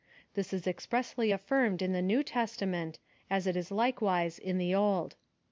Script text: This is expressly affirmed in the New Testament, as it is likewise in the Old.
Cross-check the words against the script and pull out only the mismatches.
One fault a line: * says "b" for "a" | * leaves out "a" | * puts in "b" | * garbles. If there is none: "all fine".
all fine